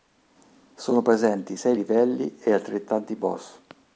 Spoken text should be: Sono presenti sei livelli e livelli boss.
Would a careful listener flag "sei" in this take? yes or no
no